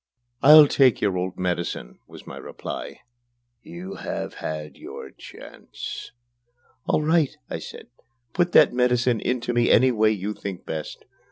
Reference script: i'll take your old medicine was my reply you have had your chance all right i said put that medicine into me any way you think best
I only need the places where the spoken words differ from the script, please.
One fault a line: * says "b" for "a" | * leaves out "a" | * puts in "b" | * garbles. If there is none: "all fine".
all fine